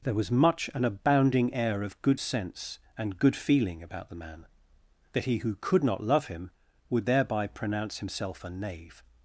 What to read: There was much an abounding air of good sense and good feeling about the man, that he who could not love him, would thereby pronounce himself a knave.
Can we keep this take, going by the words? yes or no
yes